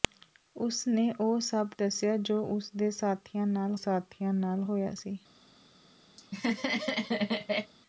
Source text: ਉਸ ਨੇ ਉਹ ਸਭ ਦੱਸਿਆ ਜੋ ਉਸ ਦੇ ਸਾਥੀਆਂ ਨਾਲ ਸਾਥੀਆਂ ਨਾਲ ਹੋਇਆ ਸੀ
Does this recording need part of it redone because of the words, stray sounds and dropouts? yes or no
yes